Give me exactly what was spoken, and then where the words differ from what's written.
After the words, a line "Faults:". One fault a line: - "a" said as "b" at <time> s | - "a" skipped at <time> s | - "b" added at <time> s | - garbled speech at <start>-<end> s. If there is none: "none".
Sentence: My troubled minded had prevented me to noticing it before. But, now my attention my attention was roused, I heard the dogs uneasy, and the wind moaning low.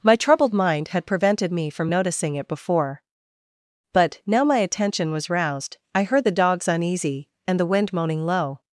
My troubled mind had prevented me from noticing it before. But, now my attention was roused, I heard the dogs uneasy, and the wind moaning low.
Faults:
- "minded" said as "mind" at 0.5 s
- "to" said as "from" at 1.7 s
- "my attention" skipped at 5.1 s